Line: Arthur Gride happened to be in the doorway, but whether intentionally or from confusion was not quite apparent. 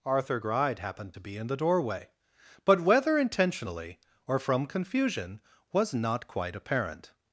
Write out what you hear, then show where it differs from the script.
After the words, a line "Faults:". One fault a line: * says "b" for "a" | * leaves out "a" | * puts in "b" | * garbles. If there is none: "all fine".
Arthur Gride happened to be in the doorway, but whether intentionally or from confusion was not quite apparent.
Faults:
all fine